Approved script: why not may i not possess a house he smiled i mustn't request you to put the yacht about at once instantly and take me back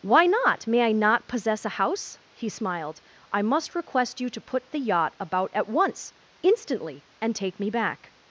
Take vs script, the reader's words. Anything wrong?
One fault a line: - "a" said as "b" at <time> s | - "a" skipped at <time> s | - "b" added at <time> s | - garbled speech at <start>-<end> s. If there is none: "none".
- "mustn't" said as "must" at 3.4 s